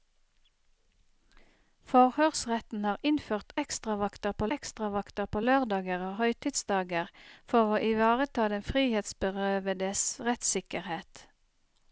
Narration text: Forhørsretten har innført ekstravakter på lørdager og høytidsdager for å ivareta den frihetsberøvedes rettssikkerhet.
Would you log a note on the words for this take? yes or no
yes